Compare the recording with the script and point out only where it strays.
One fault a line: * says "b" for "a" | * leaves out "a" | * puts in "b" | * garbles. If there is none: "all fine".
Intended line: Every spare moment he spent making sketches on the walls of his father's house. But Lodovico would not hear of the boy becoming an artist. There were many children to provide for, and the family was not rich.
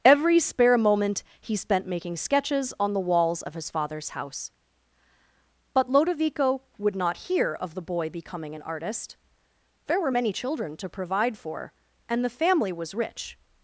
* leaves out "not"